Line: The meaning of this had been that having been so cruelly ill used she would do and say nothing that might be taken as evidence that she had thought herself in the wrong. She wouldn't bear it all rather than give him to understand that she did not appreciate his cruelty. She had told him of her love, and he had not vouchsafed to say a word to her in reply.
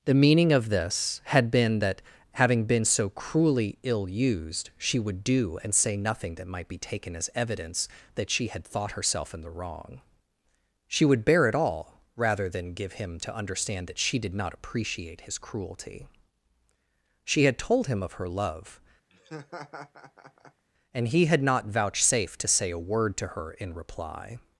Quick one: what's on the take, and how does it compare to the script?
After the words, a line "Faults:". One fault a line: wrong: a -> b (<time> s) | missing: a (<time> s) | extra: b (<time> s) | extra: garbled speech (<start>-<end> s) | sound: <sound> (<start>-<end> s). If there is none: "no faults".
The meaning of this had been that having been so cruelly ill used she would do and say nothing that might be taken as evidence that she had thought herself in the wrong. She would bear it all rather than give him to understand that she did not appreciate his cruelty. She had told him of her love, and he had not vouchsafed to say a word to her in reply.
Faults:
wrong: wouldn't -> would (11.1 s)
sound: laugh (19.1-20.6 s)